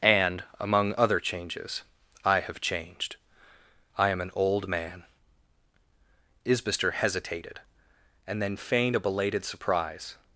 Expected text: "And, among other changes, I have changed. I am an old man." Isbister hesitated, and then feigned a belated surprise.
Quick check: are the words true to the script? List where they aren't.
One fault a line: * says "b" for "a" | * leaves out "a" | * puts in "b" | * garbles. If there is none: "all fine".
all fine